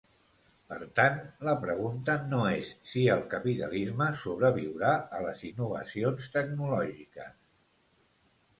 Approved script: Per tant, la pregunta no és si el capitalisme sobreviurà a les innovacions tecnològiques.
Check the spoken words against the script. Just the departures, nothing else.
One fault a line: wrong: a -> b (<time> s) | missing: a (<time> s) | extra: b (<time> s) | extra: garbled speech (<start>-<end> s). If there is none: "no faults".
no faults